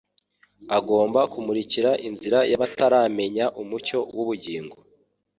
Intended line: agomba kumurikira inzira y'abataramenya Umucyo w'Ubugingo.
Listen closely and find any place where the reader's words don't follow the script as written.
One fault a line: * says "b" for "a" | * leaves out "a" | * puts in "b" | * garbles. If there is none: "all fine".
all fine